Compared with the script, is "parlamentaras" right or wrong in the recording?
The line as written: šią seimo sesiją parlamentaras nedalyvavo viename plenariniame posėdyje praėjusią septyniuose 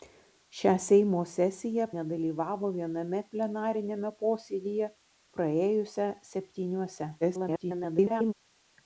wrong